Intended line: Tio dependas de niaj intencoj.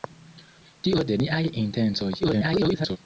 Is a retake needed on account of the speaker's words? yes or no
yes